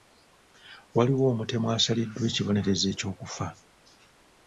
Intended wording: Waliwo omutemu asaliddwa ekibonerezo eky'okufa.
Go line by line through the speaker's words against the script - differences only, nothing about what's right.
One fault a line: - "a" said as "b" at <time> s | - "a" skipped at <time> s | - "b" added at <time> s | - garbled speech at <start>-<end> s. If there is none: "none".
none